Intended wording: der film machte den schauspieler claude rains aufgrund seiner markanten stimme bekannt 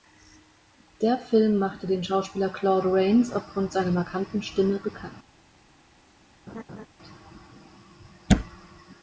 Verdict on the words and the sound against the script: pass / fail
fail